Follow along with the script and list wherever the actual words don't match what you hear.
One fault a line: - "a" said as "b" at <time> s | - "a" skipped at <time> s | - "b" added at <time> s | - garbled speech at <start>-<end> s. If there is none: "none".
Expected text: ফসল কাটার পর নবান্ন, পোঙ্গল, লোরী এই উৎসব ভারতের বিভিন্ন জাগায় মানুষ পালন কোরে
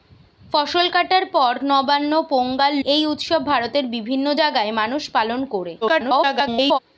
- "লোরী" skipped at 2.7 s
- garbled speech at 5.8-6.8 s